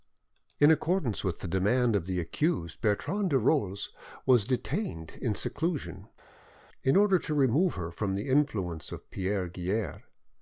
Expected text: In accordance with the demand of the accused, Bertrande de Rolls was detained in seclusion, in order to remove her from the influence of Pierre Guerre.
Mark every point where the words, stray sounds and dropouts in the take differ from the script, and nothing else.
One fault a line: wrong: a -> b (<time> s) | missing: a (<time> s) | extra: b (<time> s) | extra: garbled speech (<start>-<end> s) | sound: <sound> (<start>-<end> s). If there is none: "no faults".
no faults